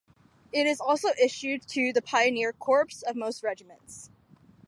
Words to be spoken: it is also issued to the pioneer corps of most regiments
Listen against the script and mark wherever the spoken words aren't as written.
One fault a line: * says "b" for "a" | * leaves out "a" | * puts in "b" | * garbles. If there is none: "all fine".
all fine